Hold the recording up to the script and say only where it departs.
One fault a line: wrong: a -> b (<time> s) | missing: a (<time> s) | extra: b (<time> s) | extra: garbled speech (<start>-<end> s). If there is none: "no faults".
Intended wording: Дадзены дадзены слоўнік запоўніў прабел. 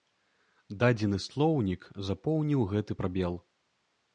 missing: дадзены (1.2 s)
extra: гэты (2.7 s)